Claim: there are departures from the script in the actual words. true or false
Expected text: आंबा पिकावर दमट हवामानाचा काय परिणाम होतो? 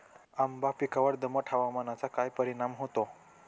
false